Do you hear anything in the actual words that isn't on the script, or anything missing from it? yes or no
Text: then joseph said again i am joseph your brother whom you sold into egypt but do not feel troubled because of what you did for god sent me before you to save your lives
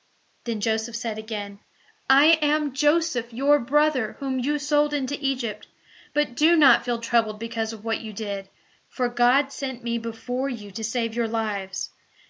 no